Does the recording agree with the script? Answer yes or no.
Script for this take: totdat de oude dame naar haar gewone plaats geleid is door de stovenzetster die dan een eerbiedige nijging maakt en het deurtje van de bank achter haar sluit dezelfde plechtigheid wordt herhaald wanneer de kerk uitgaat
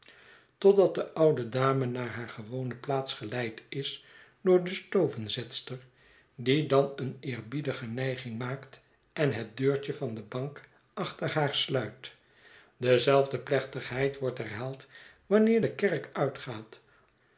yes